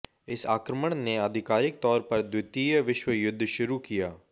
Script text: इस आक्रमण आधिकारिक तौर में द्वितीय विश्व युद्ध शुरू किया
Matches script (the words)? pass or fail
fail